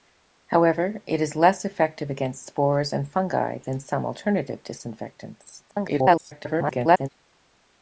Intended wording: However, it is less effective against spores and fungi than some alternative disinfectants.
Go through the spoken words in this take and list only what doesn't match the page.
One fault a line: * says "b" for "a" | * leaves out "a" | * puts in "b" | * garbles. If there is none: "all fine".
* garbles